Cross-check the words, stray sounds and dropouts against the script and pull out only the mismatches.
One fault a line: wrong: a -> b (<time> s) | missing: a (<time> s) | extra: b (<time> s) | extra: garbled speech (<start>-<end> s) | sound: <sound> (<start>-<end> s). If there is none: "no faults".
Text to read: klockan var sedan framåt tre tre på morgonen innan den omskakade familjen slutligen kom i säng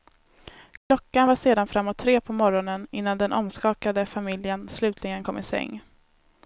sound: dropout (0.8-0.9 s)
missing: tre (2.2 s)